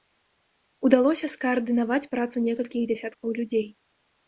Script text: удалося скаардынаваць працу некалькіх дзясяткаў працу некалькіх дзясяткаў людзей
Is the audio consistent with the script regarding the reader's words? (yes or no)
no